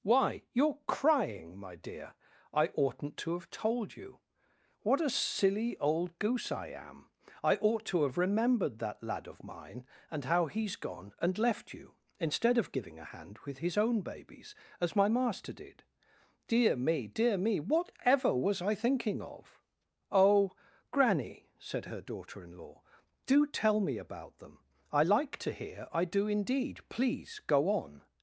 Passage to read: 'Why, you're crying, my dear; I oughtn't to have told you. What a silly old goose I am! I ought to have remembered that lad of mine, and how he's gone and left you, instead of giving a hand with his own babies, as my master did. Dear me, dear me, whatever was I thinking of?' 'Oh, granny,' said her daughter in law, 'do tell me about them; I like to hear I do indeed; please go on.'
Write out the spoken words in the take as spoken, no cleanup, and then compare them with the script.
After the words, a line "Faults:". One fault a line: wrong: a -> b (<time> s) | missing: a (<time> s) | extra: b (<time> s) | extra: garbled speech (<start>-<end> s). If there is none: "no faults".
'Why, you're crying, my dear; I oughtn't to have told you. What a silly old goose I am! I ought to have remembered that lad of mine, and how he's gone and left you, instead of giving a hand with his own babies, as my master did. Dear me, dear me, whatever was I thinking of?' 'Oh, granny,' said her daughter in law, 'do tell me about them; I like to hear I do indeed; please go on.'
Faults:
no faults